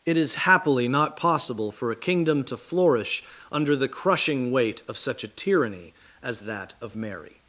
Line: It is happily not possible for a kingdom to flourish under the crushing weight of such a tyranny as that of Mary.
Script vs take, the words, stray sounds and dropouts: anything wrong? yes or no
no